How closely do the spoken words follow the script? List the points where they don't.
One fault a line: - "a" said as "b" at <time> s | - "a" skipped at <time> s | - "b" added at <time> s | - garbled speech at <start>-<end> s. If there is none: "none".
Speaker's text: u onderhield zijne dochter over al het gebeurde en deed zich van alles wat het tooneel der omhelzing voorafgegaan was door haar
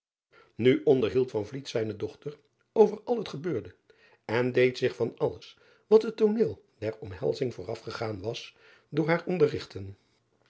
none